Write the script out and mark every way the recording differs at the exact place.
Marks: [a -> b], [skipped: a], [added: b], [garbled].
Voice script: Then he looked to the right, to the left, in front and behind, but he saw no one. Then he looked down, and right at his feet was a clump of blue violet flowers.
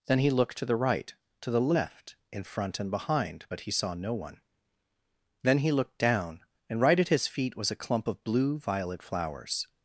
Then he looked to the right, to the left, in front and behind, but he saw no one. Then he looked down, and right at his feet was a clump of blue violet flowers.